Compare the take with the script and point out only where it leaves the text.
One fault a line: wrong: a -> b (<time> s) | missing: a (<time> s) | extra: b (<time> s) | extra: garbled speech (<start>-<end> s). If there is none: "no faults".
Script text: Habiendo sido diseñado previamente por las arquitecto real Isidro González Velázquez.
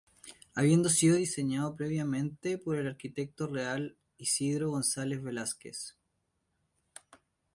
wrong: las -> el (2.8 s)